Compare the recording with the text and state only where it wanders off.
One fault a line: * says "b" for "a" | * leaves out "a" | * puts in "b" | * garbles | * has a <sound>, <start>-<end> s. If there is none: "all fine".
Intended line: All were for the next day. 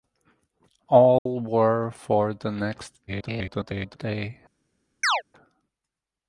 * has a dropout, 1.2-1.3 s
* garbles
* has a chirp, 5.0-5.2 s